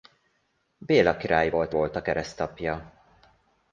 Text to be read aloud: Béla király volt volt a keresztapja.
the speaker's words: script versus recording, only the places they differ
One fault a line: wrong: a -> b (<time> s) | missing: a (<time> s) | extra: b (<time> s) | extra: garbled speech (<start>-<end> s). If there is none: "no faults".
no faults